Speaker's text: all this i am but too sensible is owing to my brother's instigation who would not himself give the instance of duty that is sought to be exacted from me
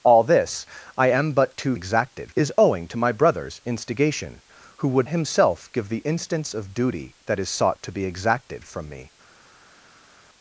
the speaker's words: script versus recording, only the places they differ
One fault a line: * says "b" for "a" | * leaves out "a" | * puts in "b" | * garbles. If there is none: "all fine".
* says "exacted" for "sensible"
* leaves out "not"